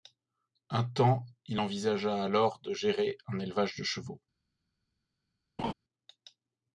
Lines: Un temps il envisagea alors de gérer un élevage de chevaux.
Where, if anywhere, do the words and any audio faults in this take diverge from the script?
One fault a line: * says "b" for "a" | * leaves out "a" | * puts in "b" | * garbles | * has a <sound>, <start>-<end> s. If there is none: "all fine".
* has a laugh, 5.6-5.7 s